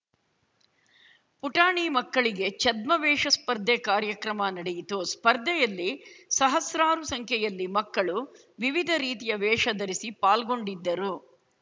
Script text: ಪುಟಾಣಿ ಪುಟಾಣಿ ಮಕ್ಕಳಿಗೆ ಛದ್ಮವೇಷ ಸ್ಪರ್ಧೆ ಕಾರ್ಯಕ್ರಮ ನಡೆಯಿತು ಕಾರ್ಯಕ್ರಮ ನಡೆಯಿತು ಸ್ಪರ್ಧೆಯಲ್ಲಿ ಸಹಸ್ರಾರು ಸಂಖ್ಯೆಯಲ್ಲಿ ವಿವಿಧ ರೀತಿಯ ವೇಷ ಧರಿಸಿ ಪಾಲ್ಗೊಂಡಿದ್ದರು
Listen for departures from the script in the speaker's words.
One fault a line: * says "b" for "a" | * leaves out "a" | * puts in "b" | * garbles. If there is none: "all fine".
* leaves out "ಪುಟಾಣಿ"
* leaves out "ಕಾರ್ಯಕ್ರಮ ನಡೆಯಿತು"
* puts in "ಮಕ್ಕಳು"